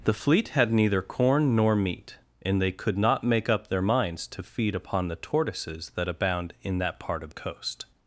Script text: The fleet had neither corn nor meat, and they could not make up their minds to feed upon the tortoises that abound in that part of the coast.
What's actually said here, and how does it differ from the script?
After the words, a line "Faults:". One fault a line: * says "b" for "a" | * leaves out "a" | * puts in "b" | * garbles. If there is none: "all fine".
The fleet had neither corn nor meat, and they could not make up their minds to feed upon the tortoises that abound in that part of coast.
Faults:
* leaves out "the"